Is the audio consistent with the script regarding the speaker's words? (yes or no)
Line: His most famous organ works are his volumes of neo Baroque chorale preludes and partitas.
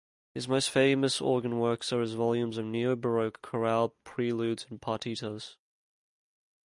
yes